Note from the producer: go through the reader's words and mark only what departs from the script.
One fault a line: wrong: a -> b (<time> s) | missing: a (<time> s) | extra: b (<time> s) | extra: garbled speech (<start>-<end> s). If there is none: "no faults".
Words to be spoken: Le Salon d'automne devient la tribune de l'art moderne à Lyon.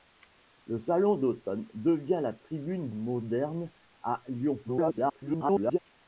missing: de l'art (2.9 s)
extra: garbled speech (4.6-5.8 s)